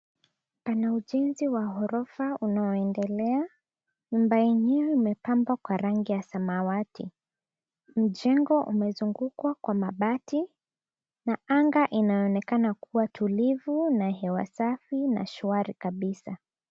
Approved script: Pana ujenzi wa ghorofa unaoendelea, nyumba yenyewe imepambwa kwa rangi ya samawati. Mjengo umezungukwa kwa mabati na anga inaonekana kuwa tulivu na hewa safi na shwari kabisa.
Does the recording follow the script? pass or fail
pass